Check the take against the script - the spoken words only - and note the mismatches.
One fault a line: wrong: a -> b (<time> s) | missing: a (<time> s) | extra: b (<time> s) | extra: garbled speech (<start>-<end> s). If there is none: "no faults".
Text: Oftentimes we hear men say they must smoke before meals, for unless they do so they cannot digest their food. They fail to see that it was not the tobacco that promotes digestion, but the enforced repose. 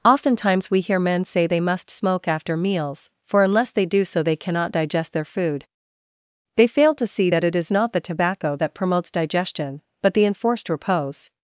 wrong: before -> after (2.3 s)
wrong: was -> is (7.6 s)